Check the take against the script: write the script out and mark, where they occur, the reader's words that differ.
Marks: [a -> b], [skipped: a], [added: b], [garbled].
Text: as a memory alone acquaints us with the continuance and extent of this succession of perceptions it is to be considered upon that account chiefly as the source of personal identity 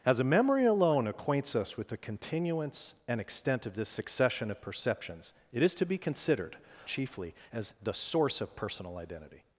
as a memory alone acquaints us with the continuance and extent of this succession of perceptions it is to be considered [skipped: upon that account] chiefly as the source of personal identity